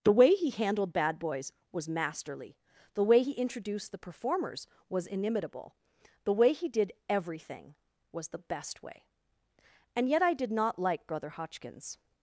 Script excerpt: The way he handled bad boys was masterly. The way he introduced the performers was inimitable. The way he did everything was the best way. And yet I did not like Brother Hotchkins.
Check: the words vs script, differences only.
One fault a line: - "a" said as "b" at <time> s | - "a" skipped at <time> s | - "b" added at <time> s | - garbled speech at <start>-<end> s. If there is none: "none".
none